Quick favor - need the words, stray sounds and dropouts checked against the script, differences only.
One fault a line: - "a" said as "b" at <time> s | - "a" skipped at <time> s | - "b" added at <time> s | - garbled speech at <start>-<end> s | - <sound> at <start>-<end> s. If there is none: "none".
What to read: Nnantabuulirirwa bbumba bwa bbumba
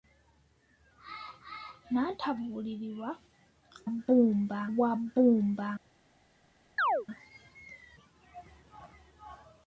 - chirp at 6.8-7.1 s